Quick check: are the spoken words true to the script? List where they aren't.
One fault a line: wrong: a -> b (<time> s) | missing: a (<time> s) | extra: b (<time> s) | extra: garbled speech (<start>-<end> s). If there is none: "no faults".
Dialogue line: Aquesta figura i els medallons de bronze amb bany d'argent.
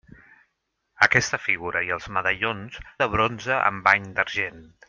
no faults